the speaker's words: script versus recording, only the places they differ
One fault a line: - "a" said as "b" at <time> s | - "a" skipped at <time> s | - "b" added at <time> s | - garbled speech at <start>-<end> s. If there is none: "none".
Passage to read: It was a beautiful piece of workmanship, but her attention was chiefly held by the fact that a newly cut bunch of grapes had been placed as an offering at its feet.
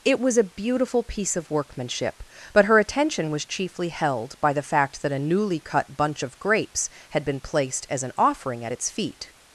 none